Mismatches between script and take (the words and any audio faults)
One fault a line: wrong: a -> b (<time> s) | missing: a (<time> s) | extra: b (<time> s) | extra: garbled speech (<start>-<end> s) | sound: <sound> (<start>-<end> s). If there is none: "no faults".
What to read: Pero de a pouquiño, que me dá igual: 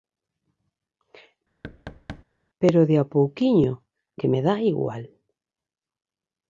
sound: thud (1.6-2.2 s)